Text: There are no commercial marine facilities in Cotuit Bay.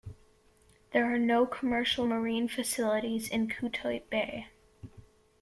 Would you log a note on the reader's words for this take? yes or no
no